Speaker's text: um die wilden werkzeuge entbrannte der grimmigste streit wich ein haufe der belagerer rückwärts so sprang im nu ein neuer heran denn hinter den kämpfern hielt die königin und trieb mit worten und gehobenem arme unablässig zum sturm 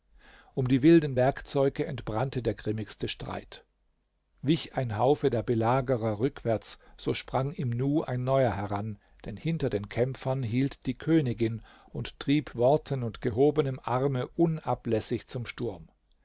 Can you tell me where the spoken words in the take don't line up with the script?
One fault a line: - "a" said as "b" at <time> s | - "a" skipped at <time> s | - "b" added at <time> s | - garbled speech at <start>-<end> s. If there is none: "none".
- "mit" skipped at 12.5 s